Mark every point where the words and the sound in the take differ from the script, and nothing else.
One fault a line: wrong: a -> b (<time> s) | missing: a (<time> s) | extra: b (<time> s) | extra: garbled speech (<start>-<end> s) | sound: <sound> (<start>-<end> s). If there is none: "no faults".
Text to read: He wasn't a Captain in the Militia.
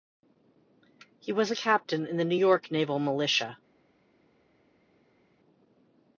wrong: wasn't -> was (1.3 s)
extra: New York Naval (2.2 s)